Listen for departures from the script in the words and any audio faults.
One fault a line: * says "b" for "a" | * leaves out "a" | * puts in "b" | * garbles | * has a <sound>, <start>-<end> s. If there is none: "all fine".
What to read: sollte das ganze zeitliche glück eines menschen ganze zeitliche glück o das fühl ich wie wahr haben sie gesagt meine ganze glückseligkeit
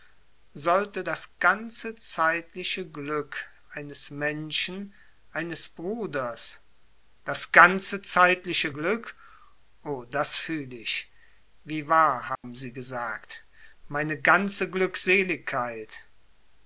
* puts in "eines bruders das"
* has a dropout, 12.4-12.4 s